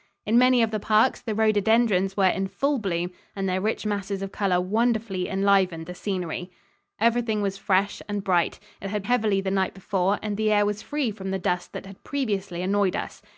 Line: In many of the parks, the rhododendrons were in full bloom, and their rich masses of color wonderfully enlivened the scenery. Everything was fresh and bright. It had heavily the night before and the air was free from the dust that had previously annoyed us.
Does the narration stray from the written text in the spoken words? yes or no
no